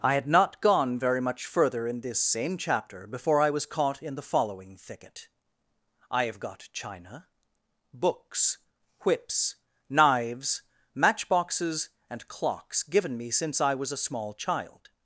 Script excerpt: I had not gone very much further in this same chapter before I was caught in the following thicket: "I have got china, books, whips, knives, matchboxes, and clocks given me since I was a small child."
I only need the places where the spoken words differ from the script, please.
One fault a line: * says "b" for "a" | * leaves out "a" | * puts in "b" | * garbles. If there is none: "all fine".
all fine